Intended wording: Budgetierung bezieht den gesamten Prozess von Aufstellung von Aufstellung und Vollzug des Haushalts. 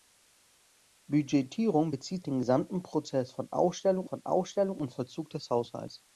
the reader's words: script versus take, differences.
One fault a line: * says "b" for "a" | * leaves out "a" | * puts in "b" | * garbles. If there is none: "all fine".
all fine